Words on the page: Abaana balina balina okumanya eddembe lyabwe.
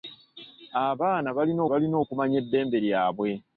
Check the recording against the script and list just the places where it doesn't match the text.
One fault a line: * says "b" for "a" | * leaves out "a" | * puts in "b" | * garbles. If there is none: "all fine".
all fine